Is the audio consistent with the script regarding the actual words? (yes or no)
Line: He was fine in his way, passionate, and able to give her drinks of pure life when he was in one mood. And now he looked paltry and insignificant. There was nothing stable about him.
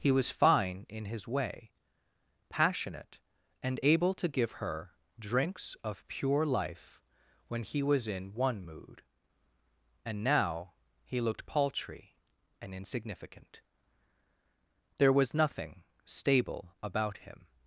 yes